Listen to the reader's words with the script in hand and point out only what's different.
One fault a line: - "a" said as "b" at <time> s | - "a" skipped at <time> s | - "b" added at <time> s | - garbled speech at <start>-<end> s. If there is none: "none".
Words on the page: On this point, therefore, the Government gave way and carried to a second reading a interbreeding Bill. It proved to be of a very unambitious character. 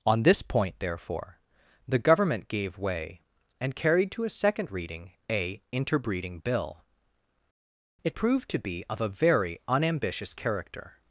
none